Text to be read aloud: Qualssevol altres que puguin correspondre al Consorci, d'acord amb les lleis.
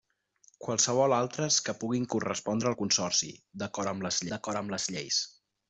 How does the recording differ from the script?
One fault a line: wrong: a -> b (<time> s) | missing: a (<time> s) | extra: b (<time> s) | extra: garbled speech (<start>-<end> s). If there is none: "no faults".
extra: d'acord amb les (4.4 s)